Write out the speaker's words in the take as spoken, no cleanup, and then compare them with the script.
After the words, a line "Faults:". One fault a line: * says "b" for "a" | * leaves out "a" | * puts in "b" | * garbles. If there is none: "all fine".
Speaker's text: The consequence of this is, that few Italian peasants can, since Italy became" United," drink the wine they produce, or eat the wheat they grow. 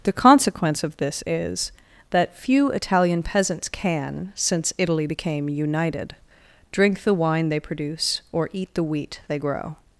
The consequence of this is, that few Italian peasants can, since Italy became" United," drink the wine they produce, or eat the wheat they grow.
Faults:
all fine